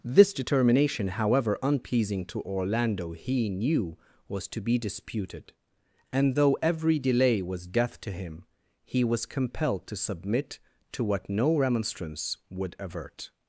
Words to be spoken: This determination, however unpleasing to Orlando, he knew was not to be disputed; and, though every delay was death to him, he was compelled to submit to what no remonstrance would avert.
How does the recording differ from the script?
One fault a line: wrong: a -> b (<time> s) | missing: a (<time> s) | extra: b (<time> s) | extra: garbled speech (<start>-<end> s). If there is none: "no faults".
missing: not (4.5 s)